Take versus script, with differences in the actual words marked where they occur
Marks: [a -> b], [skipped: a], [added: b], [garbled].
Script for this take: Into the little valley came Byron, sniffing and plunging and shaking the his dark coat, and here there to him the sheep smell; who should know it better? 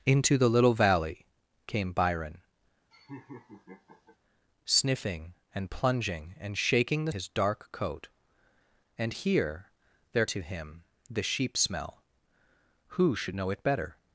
Into the little valley came Byron, sniffing and plunging and shaking the his dark coat, and here there to him the sheep smell; who should know it better?